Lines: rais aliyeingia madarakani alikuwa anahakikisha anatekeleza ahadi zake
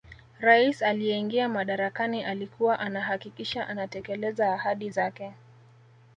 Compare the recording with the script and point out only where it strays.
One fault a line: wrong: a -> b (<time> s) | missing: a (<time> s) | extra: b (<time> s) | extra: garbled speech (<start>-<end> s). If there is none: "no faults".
no faults